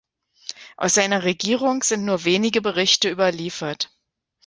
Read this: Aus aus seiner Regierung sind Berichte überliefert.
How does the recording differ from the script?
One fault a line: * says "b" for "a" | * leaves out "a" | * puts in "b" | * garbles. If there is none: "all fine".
* leaves out "aus"
* puts in "nur wenige"